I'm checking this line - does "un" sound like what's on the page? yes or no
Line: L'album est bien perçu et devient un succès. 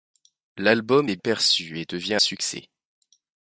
no